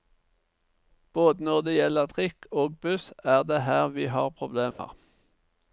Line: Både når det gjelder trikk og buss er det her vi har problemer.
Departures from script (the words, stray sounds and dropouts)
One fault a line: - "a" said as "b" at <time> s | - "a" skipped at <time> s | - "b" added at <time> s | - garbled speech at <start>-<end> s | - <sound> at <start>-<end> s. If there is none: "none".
- dropout at 4.7-4.8 s